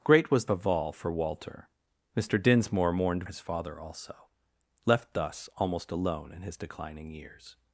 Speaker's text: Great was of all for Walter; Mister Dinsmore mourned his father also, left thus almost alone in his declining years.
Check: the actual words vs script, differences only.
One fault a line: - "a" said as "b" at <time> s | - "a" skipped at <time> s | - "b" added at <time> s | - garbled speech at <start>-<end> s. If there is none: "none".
none